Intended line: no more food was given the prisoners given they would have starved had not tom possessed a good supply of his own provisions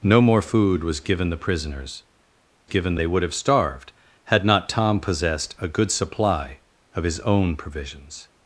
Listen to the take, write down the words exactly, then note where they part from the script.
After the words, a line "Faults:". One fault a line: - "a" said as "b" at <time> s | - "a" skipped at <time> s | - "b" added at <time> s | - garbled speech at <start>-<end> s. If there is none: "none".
no more food was given the prisoners given they would have starved had not tom possessed a good supply of his own provisions
Faults:
none